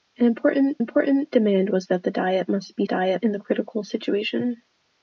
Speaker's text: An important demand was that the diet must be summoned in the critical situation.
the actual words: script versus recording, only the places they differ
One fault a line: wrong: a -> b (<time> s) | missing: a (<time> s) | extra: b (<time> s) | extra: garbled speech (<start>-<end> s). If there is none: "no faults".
extra: important (0.8 s)
wrong: summoned -> diet (2.8 s)